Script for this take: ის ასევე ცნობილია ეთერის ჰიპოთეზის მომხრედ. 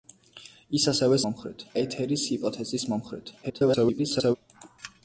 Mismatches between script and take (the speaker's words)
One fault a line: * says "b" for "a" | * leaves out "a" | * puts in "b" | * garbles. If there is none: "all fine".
* says "მომხრედ" for "ცნობილია"
* garbles